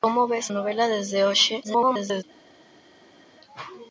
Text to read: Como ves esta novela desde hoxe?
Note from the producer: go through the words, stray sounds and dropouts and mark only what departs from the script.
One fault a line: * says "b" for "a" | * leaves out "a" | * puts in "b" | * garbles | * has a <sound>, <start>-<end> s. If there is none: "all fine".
* leaves out "esta"
* garbles